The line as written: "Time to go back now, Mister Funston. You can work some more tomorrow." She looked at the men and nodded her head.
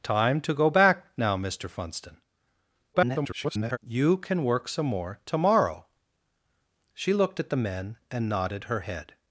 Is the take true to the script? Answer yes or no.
no